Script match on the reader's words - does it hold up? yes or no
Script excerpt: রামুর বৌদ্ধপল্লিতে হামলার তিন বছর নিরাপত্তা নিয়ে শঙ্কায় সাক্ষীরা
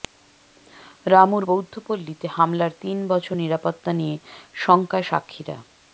yes